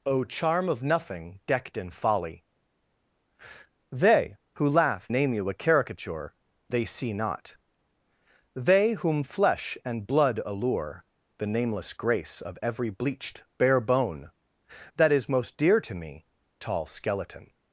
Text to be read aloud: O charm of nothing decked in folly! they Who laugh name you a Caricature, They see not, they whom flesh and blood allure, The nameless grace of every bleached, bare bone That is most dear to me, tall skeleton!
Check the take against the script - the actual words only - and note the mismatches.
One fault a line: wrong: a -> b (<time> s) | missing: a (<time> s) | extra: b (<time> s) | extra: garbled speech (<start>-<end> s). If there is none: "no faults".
no faults